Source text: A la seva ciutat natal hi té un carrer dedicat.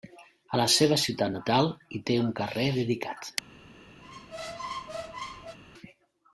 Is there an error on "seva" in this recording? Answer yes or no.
no